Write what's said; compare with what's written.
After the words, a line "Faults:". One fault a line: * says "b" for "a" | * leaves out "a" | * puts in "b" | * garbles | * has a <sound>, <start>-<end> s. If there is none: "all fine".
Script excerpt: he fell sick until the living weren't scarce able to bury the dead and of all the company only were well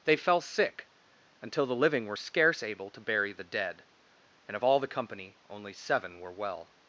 they fell sick until the living were scarce able to bury the dead and of all the company only seven were well
Faults:
* says "they" for "he"
* says "were" for "weren't"
* puts in "seven"